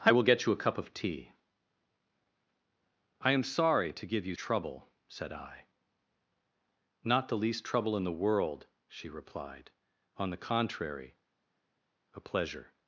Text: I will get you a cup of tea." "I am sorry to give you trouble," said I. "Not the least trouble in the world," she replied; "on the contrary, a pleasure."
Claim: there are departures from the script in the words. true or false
false